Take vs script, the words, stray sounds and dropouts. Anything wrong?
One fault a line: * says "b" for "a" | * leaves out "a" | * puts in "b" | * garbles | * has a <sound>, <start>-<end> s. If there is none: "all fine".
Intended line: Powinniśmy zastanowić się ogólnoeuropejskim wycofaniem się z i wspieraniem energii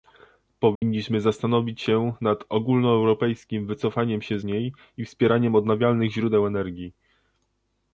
* has a dropout, 0.8-0.8 s
* puts in "nad"
* puts in "niej"
* puts in "odnawialnych źródeł"